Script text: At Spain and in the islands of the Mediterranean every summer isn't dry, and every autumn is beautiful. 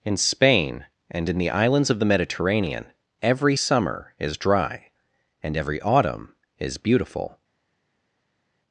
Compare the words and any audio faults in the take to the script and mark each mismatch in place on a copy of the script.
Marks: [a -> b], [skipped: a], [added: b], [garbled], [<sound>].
[At -> In] Spain and in the islands of the Mediterranean every summer [isn't -> is] dry, and every autumn is beautiful.